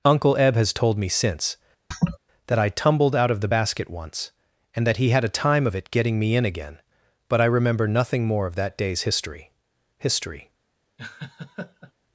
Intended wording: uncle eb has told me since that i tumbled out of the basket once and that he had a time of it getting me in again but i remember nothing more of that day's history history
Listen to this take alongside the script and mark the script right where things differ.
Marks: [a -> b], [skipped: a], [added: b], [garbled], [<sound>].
uncle eb has told me since [laugh] that i tumbled out of the basket once and that he had a time of it getting me in again but i remember nothing more of that day's history history [laugh]